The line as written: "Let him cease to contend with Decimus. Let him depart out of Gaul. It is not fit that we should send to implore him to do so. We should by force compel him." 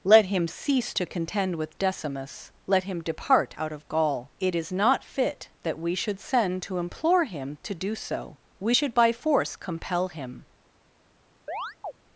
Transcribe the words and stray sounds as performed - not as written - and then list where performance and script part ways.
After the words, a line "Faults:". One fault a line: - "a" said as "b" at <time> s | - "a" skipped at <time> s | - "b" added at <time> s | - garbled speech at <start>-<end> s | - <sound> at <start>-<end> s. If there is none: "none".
"Let him cease to contend with Decimus. Let him depart out of Gaul. It is not fit that we should send to implore him to do so. We should by force compel him."
Faults:
- chirp at 11.5-11.9 s